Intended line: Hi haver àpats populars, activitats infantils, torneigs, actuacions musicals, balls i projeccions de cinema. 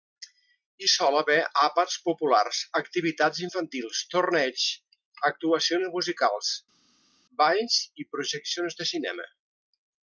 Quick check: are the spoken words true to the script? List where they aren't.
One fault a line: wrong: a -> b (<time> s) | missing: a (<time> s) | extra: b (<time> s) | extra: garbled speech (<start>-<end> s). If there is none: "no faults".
extra: sol (0.9 s)